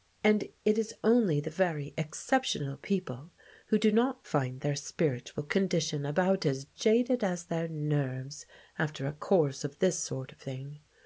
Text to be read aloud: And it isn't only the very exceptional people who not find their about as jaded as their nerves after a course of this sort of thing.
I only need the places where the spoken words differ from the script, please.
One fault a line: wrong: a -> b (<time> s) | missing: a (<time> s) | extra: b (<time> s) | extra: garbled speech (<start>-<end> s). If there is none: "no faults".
wrong: isn't -> is (0.8 s)
extra: do (3.8 s)
extra: spiritual condition (4.7 s)